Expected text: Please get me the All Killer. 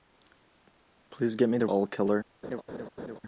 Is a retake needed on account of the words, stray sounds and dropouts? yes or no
yes